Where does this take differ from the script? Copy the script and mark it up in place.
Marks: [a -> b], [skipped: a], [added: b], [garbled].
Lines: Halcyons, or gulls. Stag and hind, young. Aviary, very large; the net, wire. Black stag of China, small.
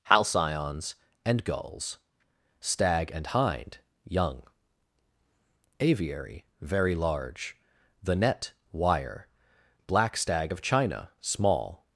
Halcyons, [or -> and] gulls. Stag and hind, young. Aviary, very large; the net, wire. Black stag of China, small.